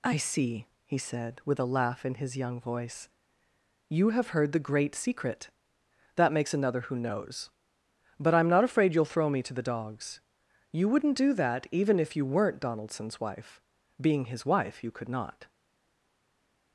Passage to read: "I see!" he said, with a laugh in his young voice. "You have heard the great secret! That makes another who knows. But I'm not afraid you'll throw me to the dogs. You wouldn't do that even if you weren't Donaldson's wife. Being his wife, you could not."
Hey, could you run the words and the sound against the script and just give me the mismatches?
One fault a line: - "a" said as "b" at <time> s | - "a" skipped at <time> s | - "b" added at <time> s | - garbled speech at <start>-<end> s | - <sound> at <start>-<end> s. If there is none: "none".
none